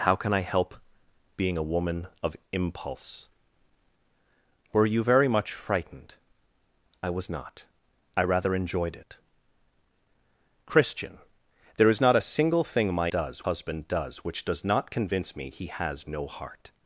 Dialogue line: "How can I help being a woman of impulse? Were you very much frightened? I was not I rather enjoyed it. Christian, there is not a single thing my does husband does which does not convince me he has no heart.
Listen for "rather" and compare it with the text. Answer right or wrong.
right